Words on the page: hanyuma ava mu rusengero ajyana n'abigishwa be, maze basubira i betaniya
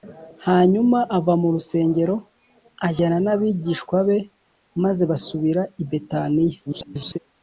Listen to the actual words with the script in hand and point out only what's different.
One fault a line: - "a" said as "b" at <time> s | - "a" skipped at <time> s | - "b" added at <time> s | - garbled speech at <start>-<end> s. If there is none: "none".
- garbled speech at 6.7-7.2 s